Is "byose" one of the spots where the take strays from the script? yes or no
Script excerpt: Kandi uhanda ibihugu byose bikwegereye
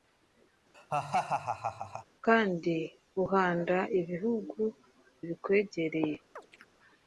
yes